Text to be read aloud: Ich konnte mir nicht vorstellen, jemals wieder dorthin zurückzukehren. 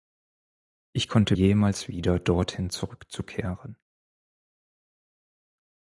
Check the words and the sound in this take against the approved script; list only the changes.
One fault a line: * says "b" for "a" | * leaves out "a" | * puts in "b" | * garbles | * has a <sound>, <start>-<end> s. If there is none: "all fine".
* leaves out "mir nicht vorstellen"